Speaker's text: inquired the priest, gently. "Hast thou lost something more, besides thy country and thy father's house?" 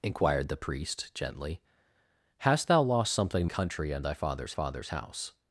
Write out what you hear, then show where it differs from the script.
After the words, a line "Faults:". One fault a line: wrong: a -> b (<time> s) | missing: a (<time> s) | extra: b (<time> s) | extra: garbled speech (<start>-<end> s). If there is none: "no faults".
inquired the priest, gently. "Hast thou lost something country and thy father's father's house?"
Faults:
missing: more besides thy (3.5 s)
extra: father's (4.5 s)